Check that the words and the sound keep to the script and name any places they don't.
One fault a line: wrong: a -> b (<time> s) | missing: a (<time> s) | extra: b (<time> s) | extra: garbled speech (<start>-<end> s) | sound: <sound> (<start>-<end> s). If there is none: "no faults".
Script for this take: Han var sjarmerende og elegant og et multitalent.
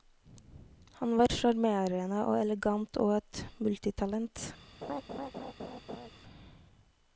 sound: laugh (4.8-6.1 s)